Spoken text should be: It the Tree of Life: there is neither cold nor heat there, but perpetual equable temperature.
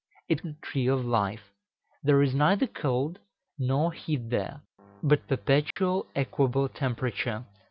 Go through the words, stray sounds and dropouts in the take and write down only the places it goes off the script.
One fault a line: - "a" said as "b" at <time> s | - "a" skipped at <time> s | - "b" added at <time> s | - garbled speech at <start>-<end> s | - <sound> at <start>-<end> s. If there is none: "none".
- dropout at 5.7-5.8 s